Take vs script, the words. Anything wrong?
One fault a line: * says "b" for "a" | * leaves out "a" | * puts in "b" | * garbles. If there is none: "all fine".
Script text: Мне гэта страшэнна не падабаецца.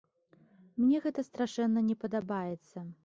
all fine